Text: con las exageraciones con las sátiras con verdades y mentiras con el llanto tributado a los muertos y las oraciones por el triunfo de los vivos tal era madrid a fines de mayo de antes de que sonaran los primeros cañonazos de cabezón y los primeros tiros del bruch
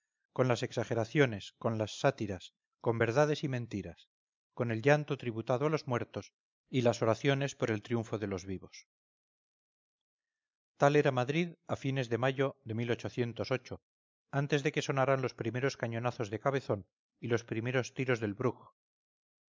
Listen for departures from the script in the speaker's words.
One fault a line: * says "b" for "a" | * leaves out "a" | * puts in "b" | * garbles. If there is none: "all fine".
all fine